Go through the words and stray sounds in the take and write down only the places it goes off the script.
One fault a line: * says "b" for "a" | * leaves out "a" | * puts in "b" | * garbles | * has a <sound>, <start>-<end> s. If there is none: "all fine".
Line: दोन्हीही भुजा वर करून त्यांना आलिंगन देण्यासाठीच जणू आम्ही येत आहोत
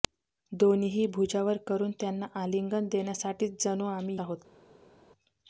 * leaves out "येत"